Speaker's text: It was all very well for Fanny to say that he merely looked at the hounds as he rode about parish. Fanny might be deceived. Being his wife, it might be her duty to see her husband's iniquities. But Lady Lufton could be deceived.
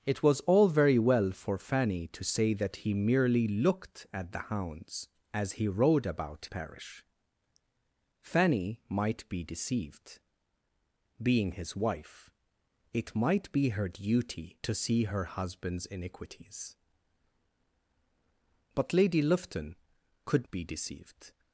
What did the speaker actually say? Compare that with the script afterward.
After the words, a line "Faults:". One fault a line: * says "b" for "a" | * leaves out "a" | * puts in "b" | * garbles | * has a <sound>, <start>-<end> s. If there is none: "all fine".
It was all very well for Fanny to say that he merely looked at the hounds as he rode about parish. Fanny might be deceived. Being his wife, it might be her duty to see her husband's iniquities. But Lady Lufton could be deceived.
Faults:
all fine